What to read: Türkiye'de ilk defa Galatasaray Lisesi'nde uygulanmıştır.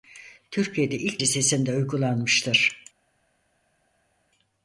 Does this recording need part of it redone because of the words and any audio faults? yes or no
yes